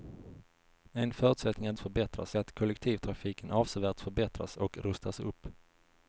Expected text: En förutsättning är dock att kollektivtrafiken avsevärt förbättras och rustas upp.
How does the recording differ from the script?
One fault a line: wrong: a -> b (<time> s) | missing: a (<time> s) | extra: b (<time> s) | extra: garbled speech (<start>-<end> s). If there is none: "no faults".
wrong: dock -> förbättras (1.8 s)